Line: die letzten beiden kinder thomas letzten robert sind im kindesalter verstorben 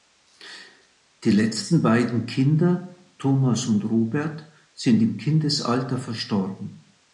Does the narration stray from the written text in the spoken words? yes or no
yes